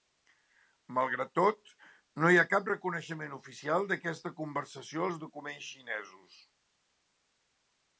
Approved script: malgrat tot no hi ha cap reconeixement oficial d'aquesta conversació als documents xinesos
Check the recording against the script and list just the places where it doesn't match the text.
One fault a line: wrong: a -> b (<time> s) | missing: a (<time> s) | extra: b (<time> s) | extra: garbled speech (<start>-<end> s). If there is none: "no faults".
no faults